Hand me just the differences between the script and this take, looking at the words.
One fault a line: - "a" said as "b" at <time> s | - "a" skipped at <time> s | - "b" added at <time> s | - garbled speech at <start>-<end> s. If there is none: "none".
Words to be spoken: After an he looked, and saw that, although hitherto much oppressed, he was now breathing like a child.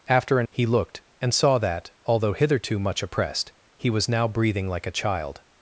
none